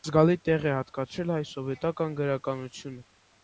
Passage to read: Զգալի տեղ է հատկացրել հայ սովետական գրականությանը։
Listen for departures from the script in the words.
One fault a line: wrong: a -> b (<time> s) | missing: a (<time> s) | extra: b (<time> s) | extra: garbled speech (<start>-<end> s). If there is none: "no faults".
no faults